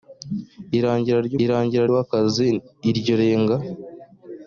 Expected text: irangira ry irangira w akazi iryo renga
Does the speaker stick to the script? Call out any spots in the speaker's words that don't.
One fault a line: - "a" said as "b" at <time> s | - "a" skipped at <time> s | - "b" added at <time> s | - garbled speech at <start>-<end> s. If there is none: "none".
none